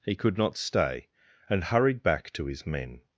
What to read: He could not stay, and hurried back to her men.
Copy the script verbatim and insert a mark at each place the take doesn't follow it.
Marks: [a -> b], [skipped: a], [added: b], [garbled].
He could not stay, and hurried back to [her -> his] men.